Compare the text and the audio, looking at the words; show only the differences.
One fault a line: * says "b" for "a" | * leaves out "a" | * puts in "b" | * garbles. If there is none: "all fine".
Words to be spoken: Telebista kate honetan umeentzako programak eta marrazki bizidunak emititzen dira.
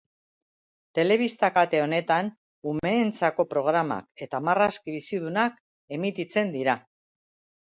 all fine